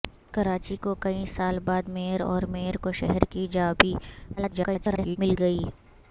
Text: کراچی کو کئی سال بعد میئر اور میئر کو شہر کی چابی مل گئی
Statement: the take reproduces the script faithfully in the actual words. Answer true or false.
false